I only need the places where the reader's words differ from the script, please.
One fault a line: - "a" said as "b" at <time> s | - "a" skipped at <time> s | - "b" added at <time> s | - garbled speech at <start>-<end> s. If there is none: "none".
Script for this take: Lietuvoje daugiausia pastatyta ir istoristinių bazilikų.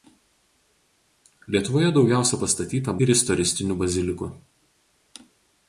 none